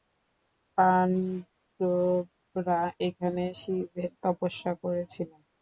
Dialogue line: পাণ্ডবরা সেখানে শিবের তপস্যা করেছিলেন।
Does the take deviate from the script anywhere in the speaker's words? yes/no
yes